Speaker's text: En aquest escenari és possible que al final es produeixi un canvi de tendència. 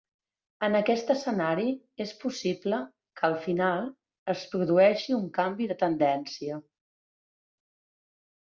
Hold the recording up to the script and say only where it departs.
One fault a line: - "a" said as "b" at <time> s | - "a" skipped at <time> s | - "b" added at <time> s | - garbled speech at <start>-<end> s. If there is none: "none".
none